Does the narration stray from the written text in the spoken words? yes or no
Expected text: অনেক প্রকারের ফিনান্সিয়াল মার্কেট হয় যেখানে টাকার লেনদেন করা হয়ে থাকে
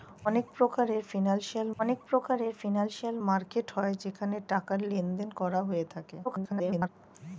yes